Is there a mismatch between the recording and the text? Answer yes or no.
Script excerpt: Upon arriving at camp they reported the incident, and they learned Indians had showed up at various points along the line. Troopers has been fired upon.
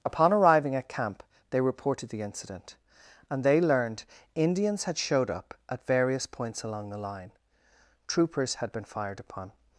yes